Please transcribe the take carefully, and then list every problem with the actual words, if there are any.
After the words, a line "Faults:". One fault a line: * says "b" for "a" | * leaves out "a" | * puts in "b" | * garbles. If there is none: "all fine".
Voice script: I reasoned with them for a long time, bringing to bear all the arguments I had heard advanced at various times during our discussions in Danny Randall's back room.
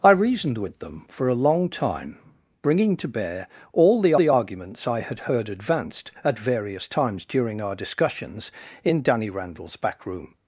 I reasoned with them for a long time, bringing to bear all the the arguments I had heard advanced at various times during our discussions in Danny Randall's back room.
Faults:
* puts in "the"